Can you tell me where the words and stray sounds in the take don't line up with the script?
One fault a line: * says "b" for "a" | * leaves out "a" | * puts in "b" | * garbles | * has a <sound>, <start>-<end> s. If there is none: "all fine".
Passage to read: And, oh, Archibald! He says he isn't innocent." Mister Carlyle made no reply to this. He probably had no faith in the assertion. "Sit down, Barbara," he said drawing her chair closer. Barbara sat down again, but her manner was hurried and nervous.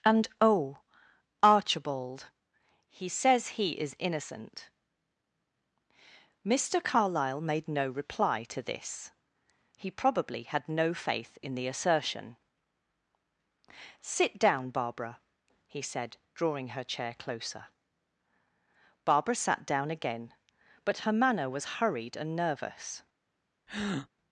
* says "is" for "isn't"
* has a breath, 23.7-24.1 s